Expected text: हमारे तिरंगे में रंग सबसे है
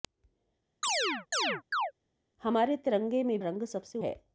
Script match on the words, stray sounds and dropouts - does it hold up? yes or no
no